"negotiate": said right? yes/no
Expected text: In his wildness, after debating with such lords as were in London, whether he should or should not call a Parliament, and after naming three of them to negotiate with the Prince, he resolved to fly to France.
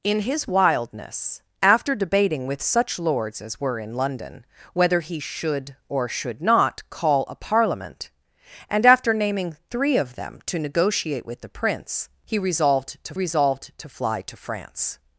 yes